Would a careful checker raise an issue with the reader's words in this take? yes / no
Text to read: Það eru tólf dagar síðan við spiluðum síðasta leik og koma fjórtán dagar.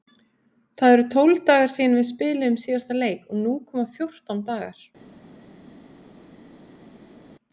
yes